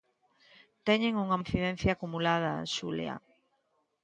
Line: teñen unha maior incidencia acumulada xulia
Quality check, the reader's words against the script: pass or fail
fail